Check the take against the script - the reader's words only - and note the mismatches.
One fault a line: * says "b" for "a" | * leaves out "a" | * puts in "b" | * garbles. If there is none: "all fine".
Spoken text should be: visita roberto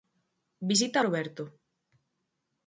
all fine